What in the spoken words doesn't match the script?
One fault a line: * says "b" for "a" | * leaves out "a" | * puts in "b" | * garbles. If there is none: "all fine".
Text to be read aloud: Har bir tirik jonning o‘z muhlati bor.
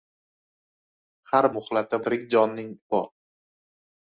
* says "muhlati" for "bir"
* leaves out "o‘z muhlati"